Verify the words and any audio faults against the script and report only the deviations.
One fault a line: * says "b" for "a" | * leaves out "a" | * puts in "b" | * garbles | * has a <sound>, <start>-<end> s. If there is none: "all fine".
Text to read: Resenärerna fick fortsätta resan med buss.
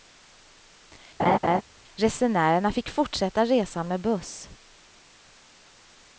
* has a laugh, 1.2-1.6 s